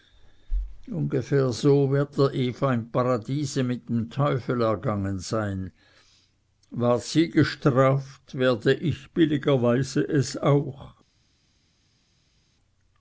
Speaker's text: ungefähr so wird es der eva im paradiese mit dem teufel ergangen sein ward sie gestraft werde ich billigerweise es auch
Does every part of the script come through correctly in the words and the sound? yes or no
no